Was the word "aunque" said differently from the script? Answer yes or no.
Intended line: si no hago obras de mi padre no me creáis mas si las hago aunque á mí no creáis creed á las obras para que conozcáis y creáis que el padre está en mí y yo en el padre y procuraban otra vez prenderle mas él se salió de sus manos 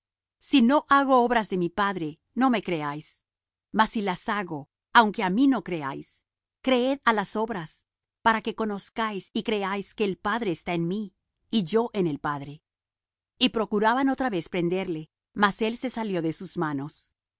no